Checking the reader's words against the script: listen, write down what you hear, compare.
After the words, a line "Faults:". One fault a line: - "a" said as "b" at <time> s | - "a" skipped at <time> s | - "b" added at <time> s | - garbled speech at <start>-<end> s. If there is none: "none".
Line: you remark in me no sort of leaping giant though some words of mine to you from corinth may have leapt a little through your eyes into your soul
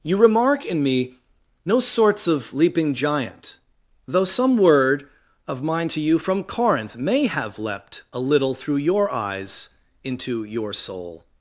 you remark in me no sorts of leaping giant though some word of mine to you from corinth may have leapt a little through your eyes into your soul
Faults:
- "sort" said as "sorts" at 1.8 s
- "words" said as "word" at 4.6 s